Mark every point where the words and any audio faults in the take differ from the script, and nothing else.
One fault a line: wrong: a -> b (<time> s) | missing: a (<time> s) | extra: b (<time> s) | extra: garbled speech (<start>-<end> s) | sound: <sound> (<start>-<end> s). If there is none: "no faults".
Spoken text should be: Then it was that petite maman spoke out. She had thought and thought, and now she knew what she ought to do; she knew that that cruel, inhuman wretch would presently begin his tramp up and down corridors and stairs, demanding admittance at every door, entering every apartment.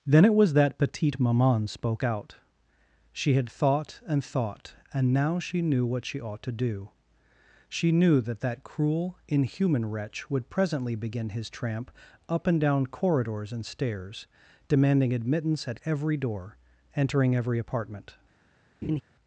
sound: laugh (18.8-19.0 s)